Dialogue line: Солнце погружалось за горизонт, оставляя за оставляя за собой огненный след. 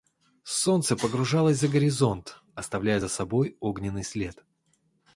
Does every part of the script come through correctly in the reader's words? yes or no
no